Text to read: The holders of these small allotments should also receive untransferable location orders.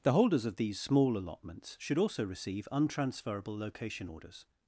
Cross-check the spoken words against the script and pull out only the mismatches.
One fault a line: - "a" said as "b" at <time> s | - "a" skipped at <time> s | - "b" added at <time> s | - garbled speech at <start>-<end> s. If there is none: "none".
none